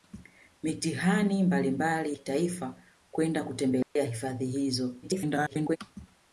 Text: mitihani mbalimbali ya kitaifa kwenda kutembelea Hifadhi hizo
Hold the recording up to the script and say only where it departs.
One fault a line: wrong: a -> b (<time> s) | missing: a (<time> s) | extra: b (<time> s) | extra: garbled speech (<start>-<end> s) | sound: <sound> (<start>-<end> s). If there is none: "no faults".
missing: ya (2.2 s)
sound: dropout (3.8-4.0 s)
extra: garbled speech (5.0-5.8 s)